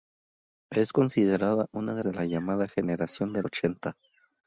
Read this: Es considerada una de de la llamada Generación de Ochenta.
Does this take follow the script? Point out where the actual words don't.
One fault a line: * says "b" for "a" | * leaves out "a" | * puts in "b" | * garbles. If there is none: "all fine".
all fine